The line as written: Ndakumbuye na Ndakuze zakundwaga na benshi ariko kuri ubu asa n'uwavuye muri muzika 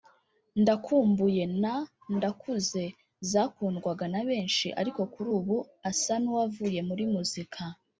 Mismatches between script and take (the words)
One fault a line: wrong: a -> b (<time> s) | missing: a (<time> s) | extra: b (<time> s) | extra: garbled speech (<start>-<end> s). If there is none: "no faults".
no faults